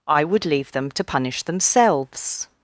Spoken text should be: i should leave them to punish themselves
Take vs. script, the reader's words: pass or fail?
fail